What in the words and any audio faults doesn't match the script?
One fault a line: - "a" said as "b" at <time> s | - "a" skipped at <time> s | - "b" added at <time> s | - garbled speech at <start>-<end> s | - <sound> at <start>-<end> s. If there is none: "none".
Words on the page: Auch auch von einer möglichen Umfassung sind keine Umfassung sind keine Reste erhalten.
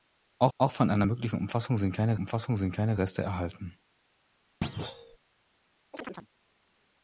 - thud at 4.6-5.2 s
- chirp at 5.9-6.3 s